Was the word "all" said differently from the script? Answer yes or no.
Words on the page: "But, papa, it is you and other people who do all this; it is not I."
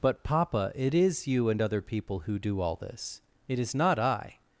no